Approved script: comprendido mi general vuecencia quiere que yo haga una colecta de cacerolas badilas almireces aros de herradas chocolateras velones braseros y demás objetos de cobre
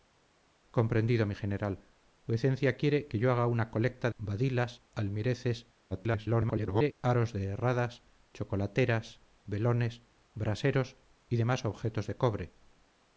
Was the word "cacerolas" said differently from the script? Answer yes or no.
yes